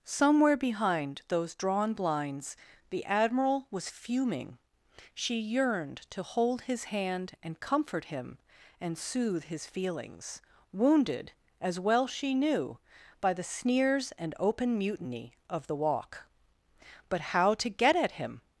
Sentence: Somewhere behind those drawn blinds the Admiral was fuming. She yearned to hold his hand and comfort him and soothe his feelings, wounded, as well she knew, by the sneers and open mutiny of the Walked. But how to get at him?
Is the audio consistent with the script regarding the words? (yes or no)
no